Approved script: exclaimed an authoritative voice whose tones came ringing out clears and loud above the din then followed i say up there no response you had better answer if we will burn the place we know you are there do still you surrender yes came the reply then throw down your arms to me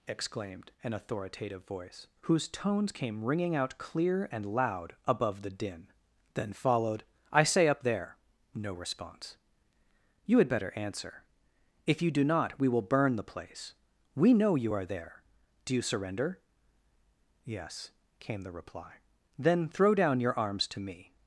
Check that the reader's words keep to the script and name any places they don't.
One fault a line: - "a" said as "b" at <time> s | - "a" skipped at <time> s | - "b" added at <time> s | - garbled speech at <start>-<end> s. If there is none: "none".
- "clears" said as "clear" at 3.8 s
- "you do not" added at 12.0 s
- "still" skipped at 15.7 s